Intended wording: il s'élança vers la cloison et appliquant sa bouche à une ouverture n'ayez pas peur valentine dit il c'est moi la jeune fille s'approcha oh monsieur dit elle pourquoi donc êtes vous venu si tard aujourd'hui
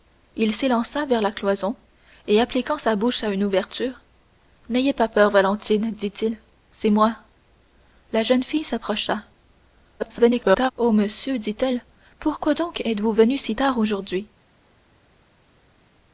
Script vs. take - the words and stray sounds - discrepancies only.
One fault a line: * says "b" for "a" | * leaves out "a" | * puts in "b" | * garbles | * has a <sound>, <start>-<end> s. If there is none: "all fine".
* garbles